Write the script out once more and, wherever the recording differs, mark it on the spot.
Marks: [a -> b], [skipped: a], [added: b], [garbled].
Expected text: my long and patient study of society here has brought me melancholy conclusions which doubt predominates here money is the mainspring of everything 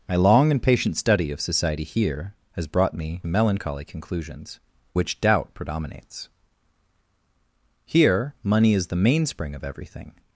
my long and patient study of society here has brought me melancholy conclusions which doubt predominates here money is the mainspring of everything